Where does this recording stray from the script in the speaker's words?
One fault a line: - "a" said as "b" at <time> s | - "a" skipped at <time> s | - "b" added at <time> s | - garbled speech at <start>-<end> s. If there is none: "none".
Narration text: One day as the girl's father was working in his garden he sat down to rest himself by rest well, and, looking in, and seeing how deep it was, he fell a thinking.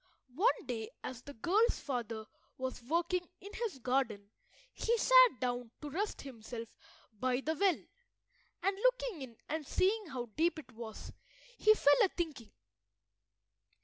- "rest" said as "the" at 7.4 s